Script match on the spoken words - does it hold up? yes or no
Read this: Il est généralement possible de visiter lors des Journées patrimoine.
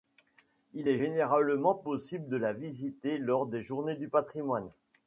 no